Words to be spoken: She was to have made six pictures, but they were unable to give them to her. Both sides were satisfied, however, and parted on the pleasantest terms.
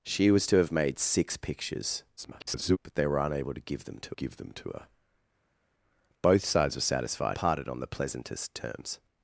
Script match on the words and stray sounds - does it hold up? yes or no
no